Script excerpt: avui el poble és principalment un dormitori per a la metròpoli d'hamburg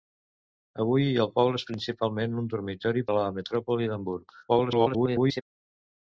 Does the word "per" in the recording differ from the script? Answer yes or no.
yes